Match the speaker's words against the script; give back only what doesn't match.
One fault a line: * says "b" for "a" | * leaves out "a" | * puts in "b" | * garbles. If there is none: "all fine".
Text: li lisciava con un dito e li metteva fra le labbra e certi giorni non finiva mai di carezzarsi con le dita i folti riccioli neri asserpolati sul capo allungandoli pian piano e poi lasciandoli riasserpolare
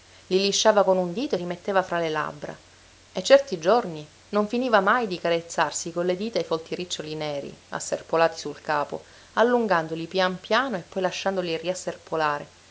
all fine